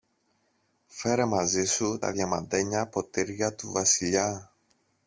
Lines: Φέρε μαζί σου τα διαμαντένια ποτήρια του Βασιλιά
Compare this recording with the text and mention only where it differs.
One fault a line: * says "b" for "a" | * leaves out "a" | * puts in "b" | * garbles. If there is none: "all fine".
all fine